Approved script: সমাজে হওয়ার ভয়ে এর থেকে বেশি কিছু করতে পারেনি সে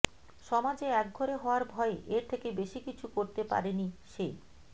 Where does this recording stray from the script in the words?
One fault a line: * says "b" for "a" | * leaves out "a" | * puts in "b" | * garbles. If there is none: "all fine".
* puts in "একঘরে"